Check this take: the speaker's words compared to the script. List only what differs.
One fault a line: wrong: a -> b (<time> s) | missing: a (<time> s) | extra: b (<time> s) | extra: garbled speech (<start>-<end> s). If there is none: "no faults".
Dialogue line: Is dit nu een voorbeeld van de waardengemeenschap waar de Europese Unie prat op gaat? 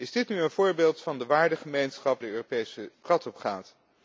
missing: waar (2.2 s)
missing: Unie (2.9 s)